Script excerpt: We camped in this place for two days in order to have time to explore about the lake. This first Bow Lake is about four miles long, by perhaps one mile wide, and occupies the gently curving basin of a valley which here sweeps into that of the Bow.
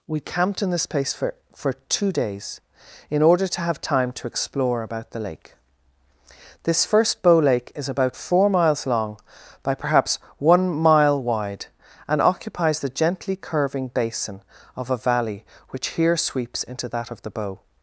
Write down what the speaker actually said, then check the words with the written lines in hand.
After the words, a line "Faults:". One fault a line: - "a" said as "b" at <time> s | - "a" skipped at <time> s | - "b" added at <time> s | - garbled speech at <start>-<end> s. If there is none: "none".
We camped in this place for for two days in order to have time to explore about the lake. This first Bow Lake is about four miles long, by perhaps one mile wide, and occupies the gently curving basin of a valley which here sweeps into that of the Bow.
Faults:
- "for" added at 1.6 s